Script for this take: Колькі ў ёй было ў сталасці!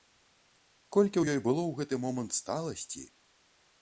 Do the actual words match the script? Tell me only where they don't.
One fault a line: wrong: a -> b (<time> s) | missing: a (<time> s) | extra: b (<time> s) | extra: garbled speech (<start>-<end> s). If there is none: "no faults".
extra: гэты момант (1.8 s)